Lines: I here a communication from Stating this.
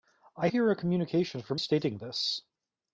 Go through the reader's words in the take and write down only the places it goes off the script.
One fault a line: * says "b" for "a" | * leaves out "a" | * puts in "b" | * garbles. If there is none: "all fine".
all fine